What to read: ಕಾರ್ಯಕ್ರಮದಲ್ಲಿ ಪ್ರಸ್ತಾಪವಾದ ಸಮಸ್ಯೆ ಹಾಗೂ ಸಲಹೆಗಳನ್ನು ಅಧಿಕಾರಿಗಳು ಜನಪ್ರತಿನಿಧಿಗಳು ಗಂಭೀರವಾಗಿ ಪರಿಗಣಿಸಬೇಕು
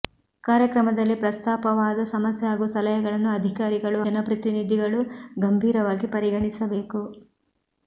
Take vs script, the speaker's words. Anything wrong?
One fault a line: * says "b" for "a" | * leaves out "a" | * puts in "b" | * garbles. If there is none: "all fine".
all fine